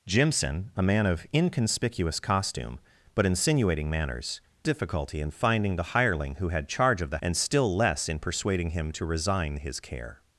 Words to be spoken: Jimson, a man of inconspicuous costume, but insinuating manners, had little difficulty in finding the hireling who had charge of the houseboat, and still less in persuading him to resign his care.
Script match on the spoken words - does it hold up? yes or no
no